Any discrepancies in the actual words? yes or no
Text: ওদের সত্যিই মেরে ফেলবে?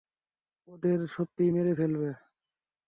no